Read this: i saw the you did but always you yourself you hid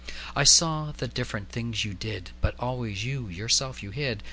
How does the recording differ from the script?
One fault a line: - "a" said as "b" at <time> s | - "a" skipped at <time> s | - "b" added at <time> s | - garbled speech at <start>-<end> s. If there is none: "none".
- "different things" added at 1.1 s